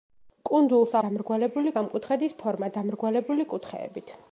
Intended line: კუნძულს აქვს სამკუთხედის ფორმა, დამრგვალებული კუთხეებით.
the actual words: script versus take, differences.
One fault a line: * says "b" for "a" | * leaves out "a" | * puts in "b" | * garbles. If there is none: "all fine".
* says "დამრგვალებული" for "აქვს"